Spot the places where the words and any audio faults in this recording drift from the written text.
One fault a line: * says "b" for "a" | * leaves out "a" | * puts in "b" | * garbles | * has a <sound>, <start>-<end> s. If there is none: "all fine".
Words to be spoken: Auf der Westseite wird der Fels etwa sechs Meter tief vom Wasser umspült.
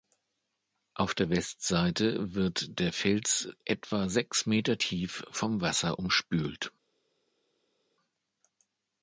all fine